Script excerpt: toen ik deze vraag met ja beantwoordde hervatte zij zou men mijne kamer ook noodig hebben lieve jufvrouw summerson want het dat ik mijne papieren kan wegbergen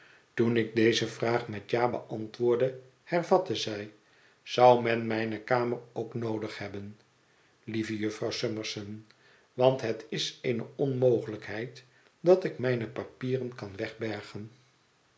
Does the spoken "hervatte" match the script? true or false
true